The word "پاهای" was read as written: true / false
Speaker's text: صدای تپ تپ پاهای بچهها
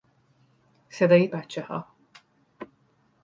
false